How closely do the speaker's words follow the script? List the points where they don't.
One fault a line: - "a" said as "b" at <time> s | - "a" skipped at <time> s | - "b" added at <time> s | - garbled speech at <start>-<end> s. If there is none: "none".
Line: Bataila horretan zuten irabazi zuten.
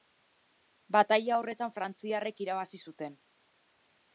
- "zuten" said as "frantziarrek" at 1.7 s